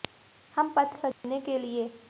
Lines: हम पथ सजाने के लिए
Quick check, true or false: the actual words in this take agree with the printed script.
true